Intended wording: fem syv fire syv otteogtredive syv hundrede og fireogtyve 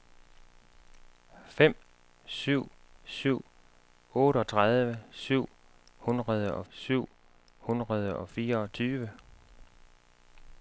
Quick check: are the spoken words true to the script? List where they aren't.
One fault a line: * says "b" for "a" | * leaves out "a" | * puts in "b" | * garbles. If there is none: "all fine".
* says "syv otteogtredive" for "fire"
* says "hundrede og" for "otteogtredive"